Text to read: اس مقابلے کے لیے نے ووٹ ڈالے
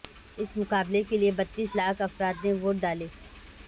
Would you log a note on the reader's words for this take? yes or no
yes